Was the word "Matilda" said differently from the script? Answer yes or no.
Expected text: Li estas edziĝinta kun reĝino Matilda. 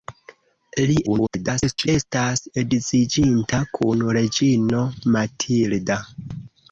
no